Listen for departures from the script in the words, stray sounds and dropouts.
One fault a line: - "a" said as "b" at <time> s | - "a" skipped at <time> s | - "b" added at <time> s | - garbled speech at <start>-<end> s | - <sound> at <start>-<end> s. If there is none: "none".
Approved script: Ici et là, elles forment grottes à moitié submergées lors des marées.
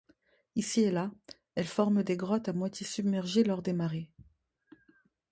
- "des" added at 2.0 s